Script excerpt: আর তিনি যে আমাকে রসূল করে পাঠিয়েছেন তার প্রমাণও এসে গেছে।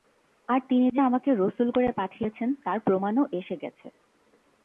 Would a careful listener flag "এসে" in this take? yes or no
no